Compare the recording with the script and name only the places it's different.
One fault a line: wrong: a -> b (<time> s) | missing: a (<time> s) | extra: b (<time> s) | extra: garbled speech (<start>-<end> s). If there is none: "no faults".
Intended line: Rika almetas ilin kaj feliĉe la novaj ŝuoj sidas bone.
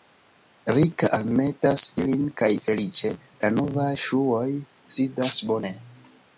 no faults